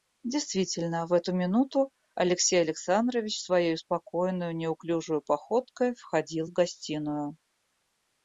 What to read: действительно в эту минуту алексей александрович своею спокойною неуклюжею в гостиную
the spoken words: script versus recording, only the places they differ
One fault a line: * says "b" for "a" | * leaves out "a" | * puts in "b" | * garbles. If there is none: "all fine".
* puts in "походкой входил"